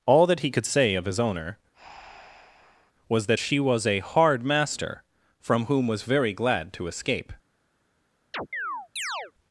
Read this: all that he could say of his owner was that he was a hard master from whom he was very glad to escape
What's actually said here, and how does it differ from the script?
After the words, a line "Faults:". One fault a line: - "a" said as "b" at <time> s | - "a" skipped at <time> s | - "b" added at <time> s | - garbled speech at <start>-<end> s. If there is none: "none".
all that he could say of his owner was that she was a hard master from whom was very glad to escape
Faults:
- "he" said as "she" at 3.4 s
- "he" skipped at 5.9 s